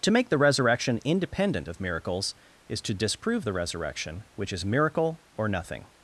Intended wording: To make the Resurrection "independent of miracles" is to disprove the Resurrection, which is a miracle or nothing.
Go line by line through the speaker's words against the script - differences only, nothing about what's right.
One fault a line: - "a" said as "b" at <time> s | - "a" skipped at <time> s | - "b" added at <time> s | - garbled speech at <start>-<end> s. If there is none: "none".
- "a" skipped at 4.6 s